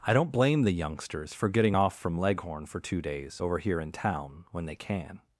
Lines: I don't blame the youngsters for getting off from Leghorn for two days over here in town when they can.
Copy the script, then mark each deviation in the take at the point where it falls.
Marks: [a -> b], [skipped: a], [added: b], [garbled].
I don't blame the youngsters for getting off from Leghorn for two days over here in town when they can.